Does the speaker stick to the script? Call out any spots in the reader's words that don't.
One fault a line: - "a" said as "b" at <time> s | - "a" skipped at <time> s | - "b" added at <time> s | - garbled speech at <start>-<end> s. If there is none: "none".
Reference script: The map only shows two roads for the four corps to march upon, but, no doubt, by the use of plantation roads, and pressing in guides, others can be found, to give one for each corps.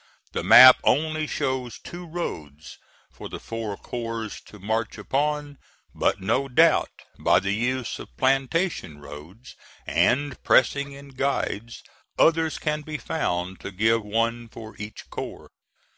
none